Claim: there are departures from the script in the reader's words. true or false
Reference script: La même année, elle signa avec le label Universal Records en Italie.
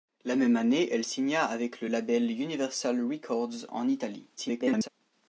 true